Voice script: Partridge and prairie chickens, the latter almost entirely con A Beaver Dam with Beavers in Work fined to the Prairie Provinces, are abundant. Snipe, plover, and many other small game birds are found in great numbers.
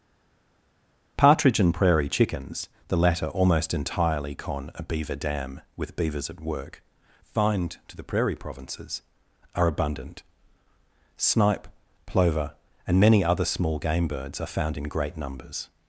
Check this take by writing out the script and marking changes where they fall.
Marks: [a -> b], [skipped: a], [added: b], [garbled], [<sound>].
Partridge and prairie chickens, the latter almost entirely con A Beaver Dam with Beavers [in -> at] Work fined to the Prairie Provinces, are abundant. Snipe, plover, and many other small game birds are found in great numbers.